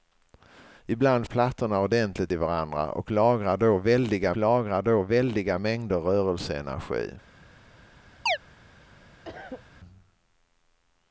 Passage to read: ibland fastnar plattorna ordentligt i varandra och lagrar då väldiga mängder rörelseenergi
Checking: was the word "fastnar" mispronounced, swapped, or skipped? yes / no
yes